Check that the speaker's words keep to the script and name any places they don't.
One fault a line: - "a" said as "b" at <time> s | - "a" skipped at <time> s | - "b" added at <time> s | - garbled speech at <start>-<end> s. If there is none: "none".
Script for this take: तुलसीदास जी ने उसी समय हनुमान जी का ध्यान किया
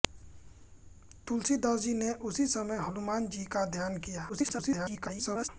- garbled speech at 4.3-5.5 s